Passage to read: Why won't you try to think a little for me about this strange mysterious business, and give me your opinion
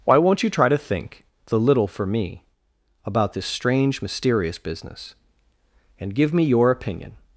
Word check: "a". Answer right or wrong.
wrong